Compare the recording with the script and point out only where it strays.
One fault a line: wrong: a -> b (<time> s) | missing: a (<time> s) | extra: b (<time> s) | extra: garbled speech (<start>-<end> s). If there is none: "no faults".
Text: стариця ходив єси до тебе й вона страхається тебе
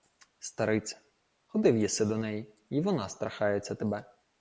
wrong: тебе -> неї (2.2 s)